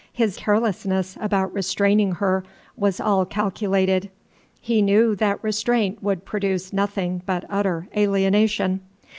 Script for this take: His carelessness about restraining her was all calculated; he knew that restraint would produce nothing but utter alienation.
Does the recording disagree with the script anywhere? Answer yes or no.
no